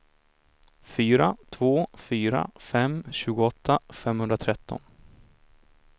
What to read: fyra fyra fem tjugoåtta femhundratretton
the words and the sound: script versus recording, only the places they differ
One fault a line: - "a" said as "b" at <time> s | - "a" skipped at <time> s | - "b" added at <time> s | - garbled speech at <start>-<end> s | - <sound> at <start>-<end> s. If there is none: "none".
- "två" added at 1.5 s